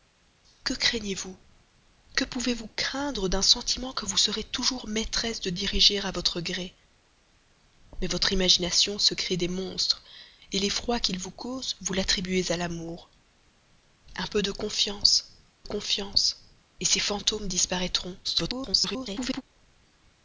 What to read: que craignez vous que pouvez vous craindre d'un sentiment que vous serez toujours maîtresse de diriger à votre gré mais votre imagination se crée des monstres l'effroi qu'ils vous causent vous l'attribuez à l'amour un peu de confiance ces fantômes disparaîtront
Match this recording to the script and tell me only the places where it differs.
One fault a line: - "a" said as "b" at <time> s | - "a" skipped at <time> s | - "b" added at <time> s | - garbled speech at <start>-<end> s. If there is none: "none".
- "confiance" added at 15.6 s
- garbled speech at 18.2-19.4 s